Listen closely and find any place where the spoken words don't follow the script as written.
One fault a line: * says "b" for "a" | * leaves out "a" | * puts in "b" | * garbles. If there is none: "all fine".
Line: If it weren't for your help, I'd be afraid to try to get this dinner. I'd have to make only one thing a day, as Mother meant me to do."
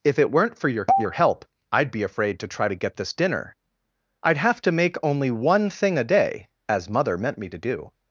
* puts in "your"